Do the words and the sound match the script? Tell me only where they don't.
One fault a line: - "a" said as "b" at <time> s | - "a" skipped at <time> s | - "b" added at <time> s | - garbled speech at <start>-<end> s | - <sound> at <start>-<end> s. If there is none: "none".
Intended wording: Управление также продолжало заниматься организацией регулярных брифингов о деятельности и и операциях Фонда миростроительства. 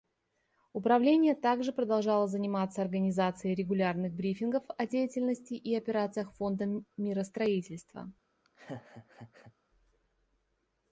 - "и" skipped at 5.8 s
- laugh at 8.4-9.5 s